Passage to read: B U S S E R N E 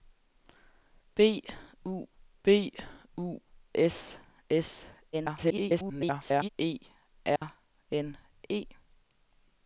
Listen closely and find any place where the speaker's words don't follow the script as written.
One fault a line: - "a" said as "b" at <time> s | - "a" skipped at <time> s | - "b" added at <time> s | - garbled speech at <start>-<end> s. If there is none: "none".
- "b U" added at 2.4 s
- garbled speech at 5.1-6.5 s